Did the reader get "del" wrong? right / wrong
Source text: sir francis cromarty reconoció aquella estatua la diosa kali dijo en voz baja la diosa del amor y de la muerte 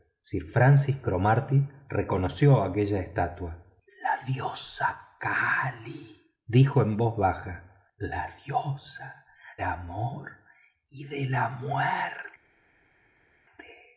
wrong